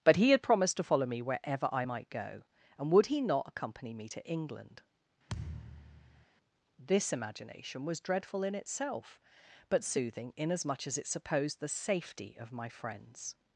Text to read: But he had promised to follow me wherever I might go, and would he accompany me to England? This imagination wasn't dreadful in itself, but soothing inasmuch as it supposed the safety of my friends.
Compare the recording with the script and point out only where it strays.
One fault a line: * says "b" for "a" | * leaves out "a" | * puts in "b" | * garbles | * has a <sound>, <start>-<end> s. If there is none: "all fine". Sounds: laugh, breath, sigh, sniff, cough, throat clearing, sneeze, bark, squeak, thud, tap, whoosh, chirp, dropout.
* puts in "not"
* has a thud, 5.3-6.3 s
* says "was" for "wasn't"